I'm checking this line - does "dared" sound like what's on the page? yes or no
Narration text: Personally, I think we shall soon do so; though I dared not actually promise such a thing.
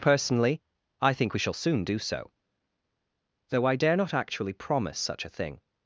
no